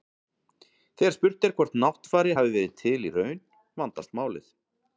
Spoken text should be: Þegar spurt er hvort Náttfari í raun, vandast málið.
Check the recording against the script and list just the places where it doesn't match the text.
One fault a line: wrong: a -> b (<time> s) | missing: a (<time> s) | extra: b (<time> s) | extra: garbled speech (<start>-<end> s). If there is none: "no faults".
extra: hafi verið til (2.4 s)